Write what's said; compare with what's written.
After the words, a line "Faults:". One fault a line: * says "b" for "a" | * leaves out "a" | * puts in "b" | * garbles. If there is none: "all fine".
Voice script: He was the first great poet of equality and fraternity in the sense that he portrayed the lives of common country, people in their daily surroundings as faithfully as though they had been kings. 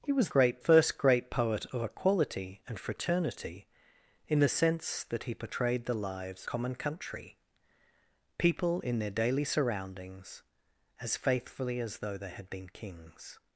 He was great first great poet of equality and fraternity in the sense that he portrayed the lives common country, people in their daily surroundings as faithfully as though they had been kings.
Faults:
* says "great" for "the"
* leaves out "of"